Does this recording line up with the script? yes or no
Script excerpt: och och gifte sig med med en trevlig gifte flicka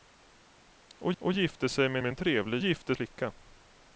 yes